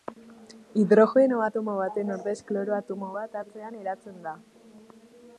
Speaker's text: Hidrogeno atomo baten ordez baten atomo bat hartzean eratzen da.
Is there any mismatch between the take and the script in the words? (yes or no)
yes